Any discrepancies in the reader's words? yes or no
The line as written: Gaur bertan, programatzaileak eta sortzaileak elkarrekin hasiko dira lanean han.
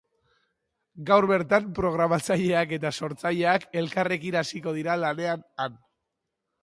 no